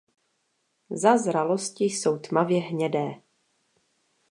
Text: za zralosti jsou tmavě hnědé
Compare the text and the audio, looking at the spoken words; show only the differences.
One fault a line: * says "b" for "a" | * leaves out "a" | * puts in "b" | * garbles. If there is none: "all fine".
all fine